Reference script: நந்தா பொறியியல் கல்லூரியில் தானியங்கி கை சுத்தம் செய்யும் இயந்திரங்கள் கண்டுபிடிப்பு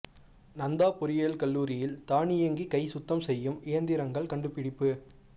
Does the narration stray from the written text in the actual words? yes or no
no